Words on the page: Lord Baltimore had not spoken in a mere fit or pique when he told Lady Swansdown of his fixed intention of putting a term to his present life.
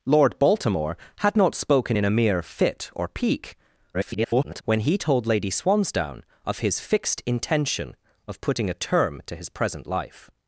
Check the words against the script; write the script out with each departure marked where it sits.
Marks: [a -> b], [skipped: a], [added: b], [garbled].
Lord Baltimore had not spoken in a mere fit or pique [garbled] when he told Lady Swansdown of his fixed intention of putting a term to his present life.